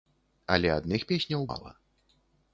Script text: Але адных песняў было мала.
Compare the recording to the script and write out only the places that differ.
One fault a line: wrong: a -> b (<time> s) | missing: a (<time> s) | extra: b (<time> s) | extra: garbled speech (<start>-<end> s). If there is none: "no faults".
missing: было (1.5 s)